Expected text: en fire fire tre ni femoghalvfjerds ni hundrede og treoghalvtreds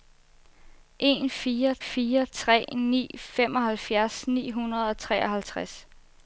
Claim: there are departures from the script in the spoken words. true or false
false